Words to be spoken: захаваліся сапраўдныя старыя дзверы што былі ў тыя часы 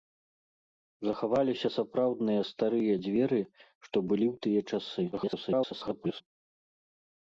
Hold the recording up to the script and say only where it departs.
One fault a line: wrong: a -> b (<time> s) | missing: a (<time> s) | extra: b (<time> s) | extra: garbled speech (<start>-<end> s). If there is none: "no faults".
extra: garbled speech (5.1-6.2 s)